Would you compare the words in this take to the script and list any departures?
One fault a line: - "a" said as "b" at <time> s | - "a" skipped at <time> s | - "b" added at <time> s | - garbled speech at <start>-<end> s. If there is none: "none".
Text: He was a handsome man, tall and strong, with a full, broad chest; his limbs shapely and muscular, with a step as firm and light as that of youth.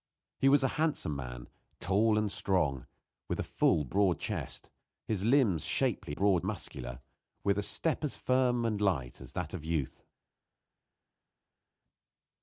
- "and" said as "broad" at 6.1 s